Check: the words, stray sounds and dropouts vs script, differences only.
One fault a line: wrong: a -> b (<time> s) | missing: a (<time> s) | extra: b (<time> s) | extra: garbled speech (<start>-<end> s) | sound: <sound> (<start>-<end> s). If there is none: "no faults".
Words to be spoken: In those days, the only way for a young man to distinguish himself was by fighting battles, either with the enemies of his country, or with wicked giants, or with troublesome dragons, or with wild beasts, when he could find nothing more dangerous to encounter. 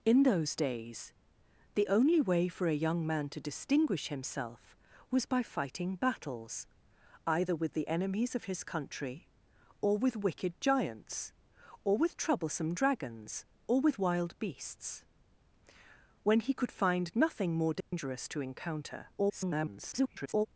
sound: dropout (17.8-17.9 s)
extra: garbled speech (19.2-20.5 s)